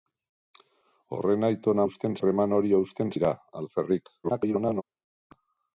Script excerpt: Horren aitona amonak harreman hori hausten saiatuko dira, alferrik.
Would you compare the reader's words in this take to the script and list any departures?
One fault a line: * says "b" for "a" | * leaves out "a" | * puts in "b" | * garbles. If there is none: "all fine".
* says "hausten" for "amonak"
* leaves out "saiatuko"
* garbles